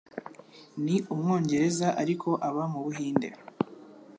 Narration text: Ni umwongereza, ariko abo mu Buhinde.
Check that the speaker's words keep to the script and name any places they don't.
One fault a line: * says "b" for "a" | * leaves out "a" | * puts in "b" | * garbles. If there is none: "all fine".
* says "aba" for "abo"